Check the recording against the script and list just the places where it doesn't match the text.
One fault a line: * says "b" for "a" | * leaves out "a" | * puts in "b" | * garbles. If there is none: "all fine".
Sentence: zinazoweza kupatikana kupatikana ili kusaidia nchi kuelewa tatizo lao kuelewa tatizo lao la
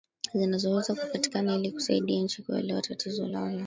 * leaves out "kupatikana"
* leaves out "kuelewa tatizo lao"